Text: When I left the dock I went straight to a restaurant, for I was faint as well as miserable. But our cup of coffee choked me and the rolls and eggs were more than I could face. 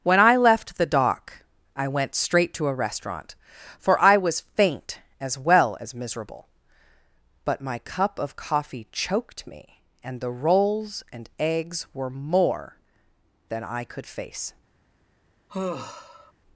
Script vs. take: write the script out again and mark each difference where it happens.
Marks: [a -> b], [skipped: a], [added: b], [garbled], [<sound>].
When I left the dock I went straight to a restaurant, for I was faint as well as miserable. But [our -> my] cup of coffee choked me and the rolls and eggs were more than I could face. [sigh]